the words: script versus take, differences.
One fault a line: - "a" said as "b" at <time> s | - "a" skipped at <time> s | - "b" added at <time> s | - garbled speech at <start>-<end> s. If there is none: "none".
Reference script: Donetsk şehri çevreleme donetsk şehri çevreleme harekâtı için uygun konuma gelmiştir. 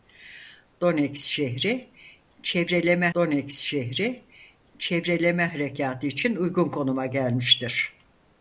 none